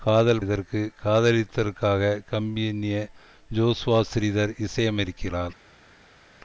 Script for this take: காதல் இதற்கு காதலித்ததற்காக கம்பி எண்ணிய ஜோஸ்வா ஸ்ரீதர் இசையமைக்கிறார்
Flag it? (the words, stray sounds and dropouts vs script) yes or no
no